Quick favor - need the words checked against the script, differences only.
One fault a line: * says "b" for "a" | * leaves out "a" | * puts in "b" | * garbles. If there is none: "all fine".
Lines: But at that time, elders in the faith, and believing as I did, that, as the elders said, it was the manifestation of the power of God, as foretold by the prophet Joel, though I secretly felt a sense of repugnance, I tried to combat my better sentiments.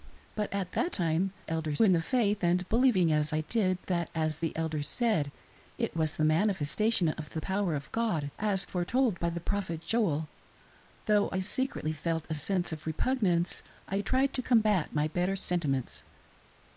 all fine